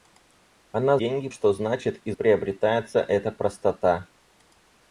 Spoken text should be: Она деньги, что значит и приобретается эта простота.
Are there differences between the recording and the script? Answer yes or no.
no